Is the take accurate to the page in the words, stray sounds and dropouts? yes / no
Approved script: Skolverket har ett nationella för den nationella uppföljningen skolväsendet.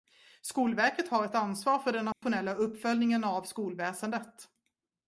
no